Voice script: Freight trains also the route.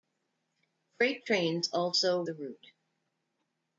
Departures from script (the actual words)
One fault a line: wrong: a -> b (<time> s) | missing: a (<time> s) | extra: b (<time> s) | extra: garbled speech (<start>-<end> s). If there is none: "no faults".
no faults